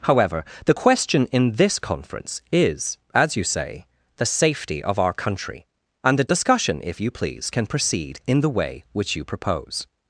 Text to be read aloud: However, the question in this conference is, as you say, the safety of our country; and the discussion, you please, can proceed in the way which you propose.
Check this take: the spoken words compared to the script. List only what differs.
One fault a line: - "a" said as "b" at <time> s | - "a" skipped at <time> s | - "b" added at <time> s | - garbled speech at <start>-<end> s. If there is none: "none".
- "if" added at 6.8 s